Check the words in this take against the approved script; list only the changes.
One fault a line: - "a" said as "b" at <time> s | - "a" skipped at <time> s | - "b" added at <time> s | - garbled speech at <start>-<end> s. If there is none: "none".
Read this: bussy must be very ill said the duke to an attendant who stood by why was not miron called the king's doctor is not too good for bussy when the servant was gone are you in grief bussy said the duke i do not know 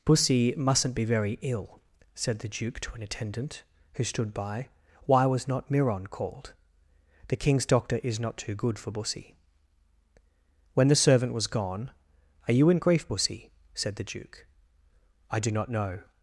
- "must" said as "mustn't" at 0.6 s